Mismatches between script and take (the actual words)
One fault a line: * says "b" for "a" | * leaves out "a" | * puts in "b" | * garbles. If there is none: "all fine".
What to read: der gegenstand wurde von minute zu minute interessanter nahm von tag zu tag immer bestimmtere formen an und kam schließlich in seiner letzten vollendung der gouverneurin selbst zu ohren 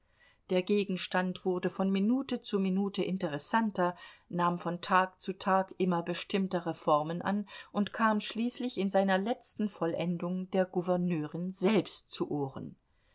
all fine